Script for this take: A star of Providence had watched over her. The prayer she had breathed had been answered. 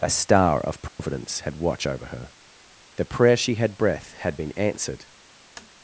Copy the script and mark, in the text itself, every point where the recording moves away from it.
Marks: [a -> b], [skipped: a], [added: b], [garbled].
A star of Providence had [watched -> watch] over her. The prayer she had [breathed -> breath] had been answered.